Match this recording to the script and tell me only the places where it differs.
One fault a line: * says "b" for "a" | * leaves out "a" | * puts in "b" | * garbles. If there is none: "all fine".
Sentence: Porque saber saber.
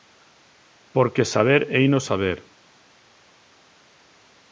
* puts in "heino"